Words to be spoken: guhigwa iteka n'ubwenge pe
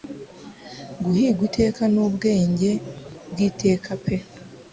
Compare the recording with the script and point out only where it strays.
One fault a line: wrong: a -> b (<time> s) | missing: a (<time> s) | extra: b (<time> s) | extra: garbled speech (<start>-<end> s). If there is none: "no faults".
extra: bw'iteka (3.3 s)